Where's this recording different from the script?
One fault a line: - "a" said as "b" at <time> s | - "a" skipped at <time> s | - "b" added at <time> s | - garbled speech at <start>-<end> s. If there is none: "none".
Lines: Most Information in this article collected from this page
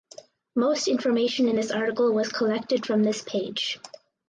- "was" added at 2.1 s